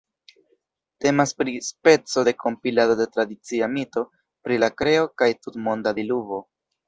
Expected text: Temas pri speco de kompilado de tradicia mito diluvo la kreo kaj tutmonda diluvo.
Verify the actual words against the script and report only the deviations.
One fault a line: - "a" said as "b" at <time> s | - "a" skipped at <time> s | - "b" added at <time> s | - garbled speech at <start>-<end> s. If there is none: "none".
- "diluvo" said as "pri" at 4.5 s